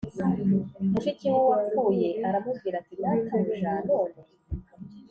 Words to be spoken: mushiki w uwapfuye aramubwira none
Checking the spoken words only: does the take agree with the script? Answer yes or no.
no